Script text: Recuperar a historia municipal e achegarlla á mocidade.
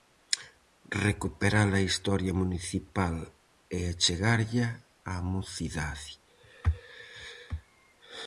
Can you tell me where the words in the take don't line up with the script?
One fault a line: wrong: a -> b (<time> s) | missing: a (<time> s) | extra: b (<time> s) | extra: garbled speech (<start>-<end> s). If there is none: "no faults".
no faults